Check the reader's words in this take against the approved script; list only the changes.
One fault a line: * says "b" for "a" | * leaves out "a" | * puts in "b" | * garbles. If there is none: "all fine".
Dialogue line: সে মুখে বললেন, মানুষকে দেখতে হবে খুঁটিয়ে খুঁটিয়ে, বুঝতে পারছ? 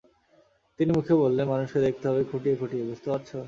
* says "তিনি" for "সে"